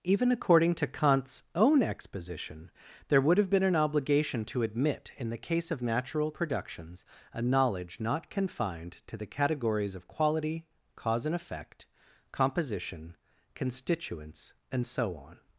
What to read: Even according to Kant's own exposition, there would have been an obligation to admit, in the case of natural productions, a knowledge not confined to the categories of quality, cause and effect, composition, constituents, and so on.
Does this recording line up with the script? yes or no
yes